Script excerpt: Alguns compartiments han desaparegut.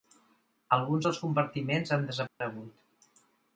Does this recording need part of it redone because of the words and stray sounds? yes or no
yes